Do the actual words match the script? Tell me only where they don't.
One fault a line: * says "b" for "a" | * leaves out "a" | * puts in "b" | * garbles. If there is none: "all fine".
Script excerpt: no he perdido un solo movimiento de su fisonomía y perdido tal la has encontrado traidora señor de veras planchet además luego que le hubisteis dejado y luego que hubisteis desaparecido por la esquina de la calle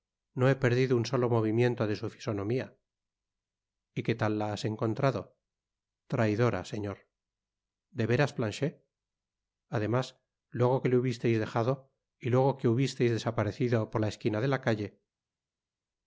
* says "qué" for "perdido"